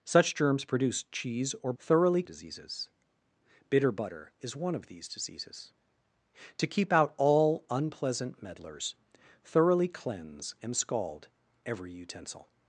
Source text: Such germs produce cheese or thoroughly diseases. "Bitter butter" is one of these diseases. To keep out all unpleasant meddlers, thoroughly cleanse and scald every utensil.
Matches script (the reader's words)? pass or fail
pass